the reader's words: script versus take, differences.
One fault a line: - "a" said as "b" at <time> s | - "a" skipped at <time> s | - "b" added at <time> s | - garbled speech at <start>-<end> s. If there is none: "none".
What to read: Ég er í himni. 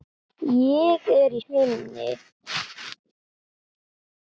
none